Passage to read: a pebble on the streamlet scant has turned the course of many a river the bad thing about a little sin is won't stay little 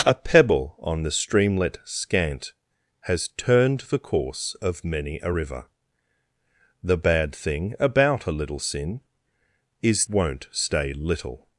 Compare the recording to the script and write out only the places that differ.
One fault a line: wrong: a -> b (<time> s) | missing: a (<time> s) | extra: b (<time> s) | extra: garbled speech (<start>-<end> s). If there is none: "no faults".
no faults